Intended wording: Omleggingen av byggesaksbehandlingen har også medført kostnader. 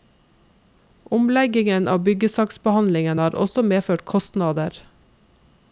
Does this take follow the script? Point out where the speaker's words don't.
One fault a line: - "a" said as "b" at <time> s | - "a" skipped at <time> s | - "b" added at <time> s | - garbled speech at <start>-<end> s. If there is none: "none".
none